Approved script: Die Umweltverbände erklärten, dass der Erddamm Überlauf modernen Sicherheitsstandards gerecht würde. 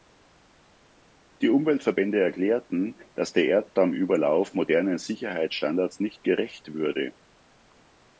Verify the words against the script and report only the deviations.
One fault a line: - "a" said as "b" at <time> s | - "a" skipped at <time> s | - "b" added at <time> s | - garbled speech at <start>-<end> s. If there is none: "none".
- "nicht" added at 6.0 s